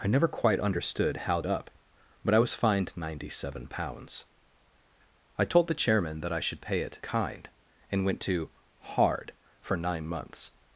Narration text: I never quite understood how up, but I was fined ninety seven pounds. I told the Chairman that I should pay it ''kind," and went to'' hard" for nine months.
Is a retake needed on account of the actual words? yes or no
no